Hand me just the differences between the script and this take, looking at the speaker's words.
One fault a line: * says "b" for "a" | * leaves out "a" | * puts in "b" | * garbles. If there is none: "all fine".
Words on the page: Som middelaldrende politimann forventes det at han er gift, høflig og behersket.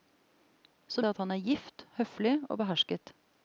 * leaves out "middelaldrende politimann forventes"